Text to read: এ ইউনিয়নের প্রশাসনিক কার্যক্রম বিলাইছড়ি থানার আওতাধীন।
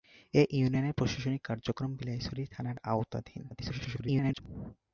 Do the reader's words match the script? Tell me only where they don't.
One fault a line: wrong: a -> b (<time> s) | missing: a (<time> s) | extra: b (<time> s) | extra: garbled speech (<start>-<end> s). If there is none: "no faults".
extra: garbled speech (3.5-4.4 s)